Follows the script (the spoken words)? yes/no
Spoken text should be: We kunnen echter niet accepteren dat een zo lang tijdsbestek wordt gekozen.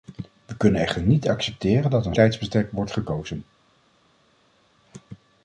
no